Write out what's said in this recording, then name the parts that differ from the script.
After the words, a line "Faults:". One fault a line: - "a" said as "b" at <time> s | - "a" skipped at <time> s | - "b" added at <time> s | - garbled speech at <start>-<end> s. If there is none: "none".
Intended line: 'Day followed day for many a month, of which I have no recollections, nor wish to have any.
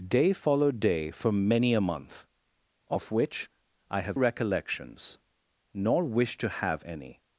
'Day followed day for many a month, of which I have recollections, nor wish to have any.
Faults:
- "no" skipped at 4.2 s